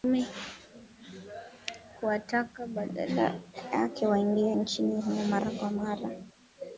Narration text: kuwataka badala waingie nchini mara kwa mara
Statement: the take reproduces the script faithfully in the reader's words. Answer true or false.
false